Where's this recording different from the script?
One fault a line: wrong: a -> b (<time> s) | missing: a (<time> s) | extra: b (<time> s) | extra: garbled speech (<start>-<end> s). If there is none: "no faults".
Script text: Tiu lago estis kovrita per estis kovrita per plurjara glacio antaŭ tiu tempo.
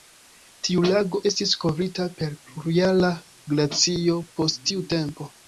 missing: estis kovrita per (2.3 s)
wrong: antaŭ -> post (4.4 s)